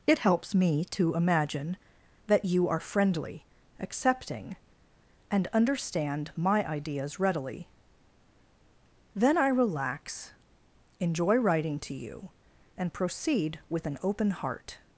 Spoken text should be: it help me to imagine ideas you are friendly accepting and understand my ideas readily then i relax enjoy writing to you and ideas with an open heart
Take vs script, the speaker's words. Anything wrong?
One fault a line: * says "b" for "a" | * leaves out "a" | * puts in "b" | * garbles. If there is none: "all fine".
* says "helps" for "help"
* says "that" for "ideas"
* says "proceed" for "ideas"